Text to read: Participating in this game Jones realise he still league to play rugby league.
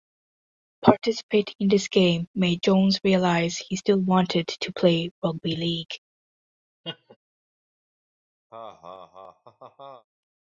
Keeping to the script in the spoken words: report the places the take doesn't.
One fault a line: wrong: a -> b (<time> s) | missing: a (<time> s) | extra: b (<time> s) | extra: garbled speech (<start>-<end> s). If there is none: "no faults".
extra: made (2.4 s)
wrong: league -> wanted (4.0 s)